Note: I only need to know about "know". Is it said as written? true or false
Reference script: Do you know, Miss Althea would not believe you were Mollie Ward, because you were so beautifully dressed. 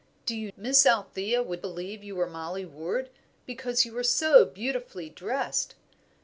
false